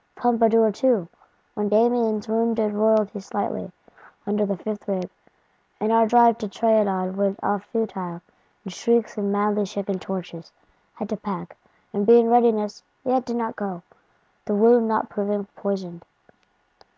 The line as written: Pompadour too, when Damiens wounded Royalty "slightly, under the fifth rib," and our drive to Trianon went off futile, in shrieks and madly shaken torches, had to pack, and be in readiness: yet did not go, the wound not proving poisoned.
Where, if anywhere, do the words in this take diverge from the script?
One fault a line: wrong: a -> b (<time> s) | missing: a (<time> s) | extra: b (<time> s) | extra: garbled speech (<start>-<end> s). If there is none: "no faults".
no faults